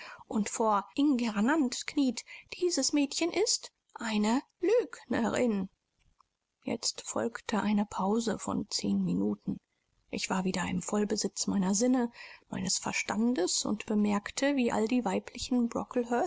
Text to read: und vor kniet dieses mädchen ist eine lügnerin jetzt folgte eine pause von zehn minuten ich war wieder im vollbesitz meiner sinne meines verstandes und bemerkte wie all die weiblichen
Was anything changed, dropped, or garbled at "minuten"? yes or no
no